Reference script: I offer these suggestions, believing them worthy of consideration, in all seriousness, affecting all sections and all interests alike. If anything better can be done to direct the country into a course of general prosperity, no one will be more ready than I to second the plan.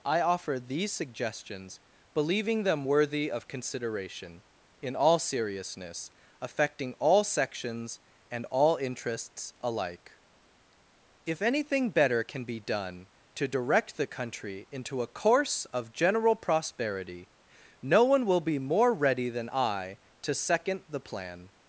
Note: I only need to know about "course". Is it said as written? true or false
true